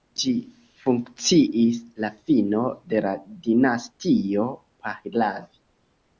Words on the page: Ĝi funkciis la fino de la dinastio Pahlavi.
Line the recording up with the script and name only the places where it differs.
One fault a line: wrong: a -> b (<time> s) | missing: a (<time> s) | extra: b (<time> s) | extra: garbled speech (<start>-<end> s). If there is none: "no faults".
no faults